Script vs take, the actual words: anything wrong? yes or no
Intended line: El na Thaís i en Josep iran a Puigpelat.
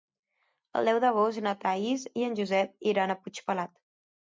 yes